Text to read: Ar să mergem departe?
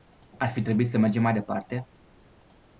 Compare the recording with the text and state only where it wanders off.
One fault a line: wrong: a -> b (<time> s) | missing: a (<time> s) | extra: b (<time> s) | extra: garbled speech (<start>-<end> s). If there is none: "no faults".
extra: fi trebuit (0.5 s)
extra: mai (1.2 s)